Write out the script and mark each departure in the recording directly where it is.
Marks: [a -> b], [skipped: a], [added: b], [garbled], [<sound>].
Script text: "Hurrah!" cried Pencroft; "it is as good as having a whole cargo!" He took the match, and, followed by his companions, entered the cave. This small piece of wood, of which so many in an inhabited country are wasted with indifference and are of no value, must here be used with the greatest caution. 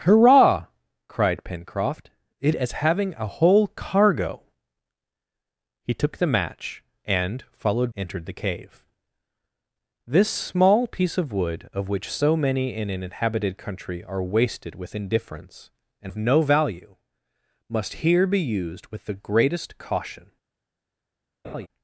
"Hurrah!" cried Pencroft; "it [skipped: is] as [skipped: good as] having a whole cargo!" He took the match, and, followed [skipped: by his companions,] entered the cave. This small piece of wood, of which so many in an inhabited country are wasted with indifference and [skipped: are] of no value, must here be used with the greatest caution. [laugh]